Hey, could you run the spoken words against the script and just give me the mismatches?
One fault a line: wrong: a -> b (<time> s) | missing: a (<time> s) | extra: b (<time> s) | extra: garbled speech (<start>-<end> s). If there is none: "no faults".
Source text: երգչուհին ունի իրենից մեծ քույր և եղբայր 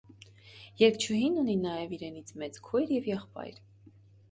extra: նաև (1.7 s)